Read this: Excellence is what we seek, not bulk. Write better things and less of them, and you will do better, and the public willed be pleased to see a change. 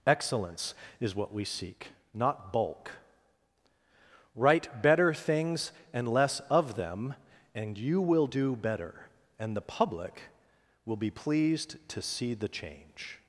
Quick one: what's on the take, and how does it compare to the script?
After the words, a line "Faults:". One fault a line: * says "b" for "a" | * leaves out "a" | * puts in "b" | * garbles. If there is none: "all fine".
Excellence is what we seek, not bulk. Write better things and less of them, and you will do better, and the public will be pleased to see the change.
Faults:
* says "will" for "willed"
* says "the" for "a"